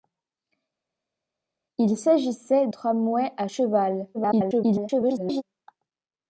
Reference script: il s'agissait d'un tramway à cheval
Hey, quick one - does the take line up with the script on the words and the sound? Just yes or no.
no